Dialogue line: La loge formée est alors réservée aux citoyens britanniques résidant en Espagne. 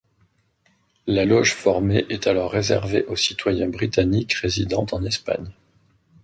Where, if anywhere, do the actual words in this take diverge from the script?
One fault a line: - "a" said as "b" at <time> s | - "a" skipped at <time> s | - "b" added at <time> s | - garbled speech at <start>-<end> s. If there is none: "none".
none